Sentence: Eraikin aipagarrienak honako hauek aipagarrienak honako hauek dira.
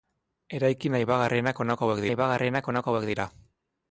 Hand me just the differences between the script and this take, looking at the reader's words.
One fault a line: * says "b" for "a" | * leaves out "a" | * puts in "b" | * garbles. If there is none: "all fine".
all fine